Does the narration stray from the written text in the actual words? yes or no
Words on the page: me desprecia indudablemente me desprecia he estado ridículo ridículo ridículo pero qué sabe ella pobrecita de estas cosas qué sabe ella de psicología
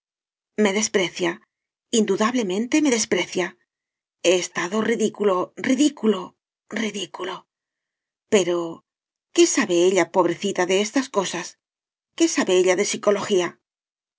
no